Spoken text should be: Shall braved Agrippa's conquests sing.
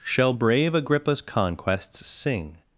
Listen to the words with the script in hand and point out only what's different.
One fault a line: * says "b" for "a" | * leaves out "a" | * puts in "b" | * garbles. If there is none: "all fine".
* says "brave" for "braved"